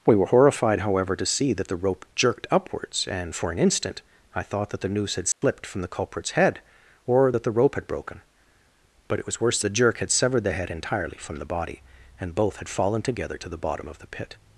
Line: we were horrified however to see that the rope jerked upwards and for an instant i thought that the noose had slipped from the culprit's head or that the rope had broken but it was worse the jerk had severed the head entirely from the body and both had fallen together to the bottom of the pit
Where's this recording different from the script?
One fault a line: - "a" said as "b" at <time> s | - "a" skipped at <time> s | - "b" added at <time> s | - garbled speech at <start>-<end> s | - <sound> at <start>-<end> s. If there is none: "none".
- dropout at 5.3-5.4 s